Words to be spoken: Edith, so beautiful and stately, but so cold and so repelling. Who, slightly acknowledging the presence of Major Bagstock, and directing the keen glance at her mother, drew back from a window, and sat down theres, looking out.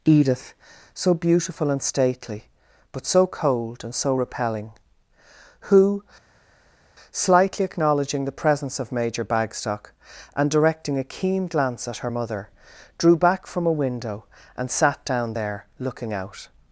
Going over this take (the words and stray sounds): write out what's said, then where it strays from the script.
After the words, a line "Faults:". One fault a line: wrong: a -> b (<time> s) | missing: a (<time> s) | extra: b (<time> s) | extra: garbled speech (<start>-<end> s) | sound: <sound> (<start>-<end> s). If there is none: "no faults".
Edith, so beautiful and stately, but so cold and so repelling. Who, slightly acknowledging the presence of Major Bagstock, and directing a keen glance at her mother, drew back from a window, and sat down there, looking out.
Faults:
wrong: the -> a (11.0 s)
wrong: theres -> there (15.3 s)